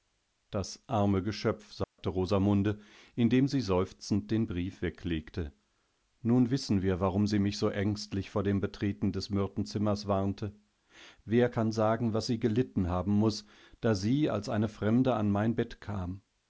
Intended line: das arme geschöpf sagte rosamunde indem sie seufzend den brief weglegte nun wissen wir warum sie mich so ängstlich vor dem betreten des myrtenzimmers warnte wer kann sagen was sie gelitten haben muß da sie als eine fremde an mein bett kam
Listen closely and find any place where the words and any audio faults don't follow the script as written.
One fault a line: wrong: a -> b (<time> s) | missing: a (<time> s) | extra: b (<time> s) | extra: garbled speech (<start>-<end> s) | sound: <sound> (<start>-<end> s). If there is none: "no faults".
sound: dropout (1.8-2.0 s)